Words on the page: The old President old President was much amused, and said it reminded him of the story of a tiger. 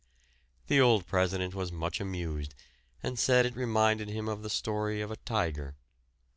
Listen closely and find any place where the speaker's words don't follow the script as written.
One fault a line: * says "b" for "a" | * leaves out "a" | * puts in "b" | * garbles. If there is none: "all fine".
* leaves out "old President"